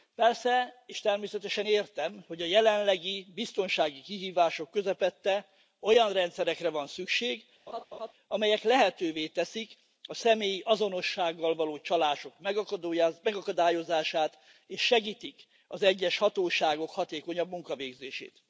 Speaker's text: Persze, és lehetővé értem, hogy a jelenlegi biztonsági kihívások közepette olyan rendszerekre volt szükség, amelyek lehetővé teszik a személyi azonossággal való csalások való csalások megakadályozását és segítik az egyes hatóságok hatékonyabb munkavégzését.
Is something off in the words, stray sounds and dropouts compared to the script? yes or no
yes